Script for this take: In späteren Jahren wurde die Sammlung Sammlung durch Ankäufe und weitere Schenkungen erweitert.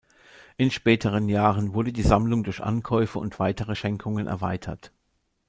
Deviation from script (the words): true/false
true